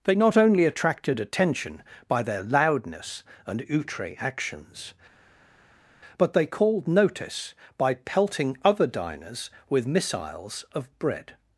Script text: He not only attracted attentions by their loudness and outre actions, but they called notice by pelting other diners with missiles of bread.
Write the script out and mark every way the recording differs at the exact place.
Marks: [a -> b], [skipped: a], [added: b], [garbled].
[He -> They] not only attracted [attentions -> attention] by their loudness and outre actions, but they called notice by pelting other diners with missiles of bread.